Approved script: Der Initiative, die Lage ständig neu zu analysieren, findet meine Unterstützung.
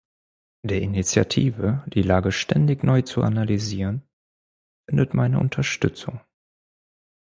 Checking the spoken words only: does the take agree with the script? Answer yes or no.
yes